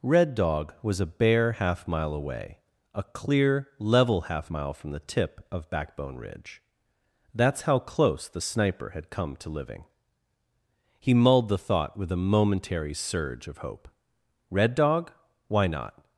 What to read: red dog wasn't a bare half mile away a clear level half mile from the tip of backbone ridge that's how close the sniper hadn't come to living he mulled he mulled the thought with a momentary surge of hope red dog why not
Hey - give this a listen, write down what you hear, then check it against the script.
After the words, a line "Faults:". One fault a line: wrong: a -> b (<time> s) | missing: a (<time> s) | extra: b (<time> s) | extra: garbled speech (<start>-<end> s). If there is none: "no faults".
red dog was a bare half mile away a clear level half mile from the tip of backbone ridge that's how close the sniper had come to living he mulled the thought with a momentary surge of hope red dog why not
Faults:
wrong: wasn't -> was (0.8 s)
wrong: hadn't -> had (8.9 s)
missing: he mulled (11.5 s)